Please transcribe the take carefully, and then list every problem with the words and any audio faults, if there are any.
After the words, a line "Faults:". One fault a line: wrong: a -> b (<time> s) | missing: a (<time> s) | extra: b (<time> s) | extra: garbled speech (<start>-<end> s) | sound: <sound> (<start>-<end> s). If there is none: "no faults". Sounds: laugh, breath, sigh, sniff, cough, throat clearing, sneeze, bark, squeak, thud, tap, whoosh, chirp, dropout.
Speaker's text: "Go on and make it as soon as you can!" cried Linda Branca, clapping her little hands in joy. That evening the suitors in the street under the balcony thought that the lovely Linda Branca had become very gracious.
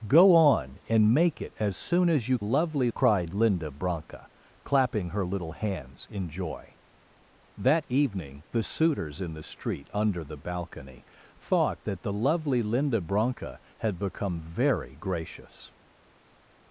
"Go on and make it as soon as you lovely!" cried Linda Branca, clapping her little hands in joy. That evening the suitors in the street under the balcony thought that the lovely Linda Branca had become very gracious.
Faults:
wrong: can -> lovely (2.4 s)